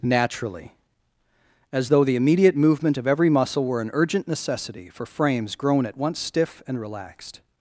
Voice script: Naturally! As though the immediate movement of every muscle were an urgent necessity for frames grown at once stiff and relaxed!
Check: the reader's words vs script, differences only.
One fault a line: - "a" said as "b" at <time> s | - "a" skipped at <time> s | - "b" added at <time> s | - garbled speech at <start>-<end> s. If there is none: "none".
none